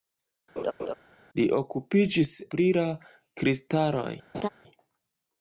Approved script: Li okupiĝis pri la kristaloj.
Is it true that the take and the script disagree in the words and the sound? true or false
true